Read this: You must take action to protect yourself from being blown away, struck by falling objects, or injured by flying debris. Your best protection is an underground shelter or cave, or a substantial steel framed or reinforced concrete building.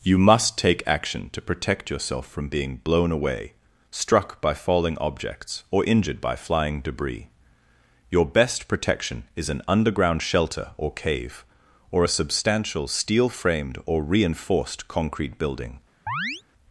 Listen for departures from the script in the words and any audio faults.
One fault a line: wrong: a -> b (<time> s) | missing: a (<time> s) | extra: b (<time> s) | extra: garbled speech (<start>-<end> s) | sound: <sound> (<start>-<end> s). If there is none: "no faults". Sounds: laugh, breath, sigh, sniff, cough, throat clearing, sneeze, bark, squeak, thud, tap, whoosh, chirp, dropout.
sound: chirp (16.1-16.4 s)